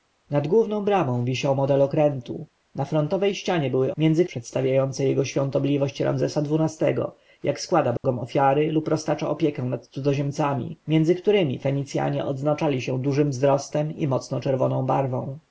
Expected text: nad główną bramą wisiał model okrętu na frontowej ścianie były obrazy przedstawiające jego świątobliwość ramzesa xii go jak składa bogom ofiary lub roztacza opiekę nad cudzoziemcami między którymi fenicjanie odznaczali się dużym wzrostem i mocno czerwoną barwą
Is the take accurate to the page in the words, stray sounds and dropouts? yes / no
no